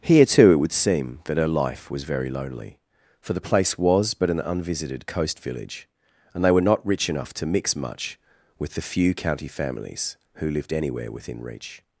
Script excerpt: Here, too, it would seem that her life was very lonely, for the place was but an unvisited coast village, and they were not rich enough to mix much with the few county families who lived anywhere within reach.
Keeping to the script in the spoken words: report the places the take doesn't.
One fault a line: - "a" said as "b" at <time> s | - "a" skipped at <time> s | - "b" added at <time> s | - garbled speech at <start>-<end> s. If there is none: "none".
none